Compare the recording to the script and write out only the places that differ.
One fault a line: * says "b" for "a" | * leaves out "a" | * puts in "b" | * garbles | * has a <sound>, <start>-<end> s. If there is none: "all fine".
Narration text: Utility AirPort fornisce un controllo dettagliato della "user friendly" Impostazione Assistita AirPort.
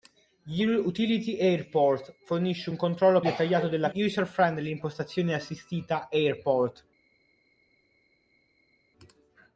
all fine